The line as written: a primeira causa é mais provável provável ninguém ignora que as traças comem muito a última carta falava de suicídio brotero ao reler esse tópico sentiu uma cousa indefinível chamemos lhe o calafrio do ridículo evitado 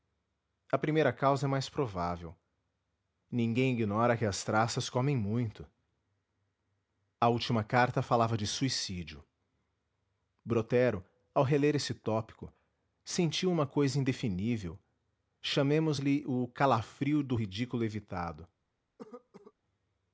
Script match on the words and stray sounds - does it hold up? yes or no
no